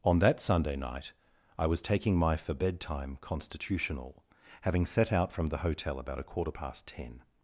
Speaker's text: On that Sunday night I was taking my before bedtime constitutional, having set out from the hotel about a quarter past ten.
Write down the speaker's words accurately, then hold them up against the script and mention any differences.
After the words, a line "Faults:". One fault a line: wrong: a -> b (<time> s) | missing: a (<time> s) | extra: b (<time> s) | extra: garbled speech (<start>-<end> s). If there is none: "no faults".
On that Sunday night I was taking my for bedtime constitutional, having set out from the hotel about a quarter past ten.
Faults:
wrong: before -> for (2.4 s)